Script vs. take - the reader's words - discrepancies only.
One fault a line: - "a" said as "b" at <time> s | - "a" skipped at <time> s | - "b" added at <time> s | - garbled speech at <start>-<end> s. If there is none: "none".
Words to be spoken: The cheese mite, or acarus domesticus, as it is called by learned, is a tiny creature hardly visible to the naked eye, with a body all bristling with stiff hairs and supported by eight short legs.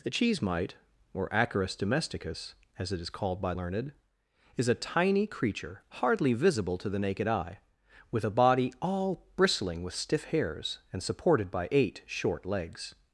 none